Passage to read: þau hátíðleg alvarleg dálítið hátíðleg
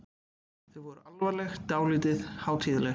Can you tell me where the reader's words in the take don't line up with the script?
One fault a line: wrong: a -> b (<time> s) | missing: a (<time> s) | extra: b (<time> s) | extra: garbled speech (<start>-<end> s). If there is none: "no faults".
wrong: hátíðleg -> voru (0.9 s)